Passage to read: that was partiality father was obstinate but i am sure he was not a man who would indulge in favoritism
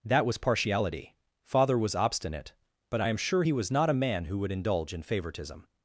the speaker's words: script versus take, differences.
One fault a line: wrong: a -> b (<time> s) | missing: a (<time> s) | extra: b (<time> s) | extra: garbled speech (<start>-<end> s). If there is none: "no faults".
no faults